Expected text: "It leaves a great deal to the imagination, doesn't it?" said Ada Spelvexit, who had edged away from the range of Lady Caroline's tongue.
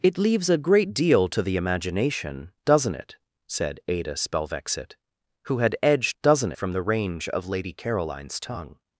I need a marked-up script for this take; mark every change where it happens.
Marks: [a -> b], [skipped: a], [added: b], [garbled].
"It leaves a great deal to the imagination, doesn't it?" said Ada Spelvexit, who had edged [away -> doesn't] from the range of Lady Caroline's tongue.